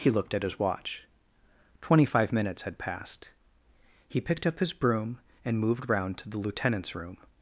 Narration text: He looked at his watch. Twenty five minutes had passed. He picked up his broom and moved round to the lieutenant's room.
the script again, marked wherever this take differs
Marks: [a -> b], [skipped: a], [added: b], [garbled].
He looked at his watch. Twenty five minutes had passed. He picked up his broom and moved round to the lieutenant's room.